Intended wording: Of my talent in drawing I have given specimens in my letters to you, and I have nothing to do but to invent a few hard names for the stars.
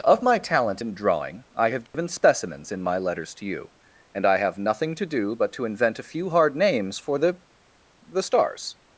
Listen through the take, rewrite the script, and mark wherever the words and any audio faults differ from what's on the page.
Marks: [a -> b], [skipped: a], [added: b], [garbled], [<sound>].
Of my talent in drawing I have given [dropout] specimens in my letters to you, and I have nothing to do but to invent a few hard names for the [added: the] stars.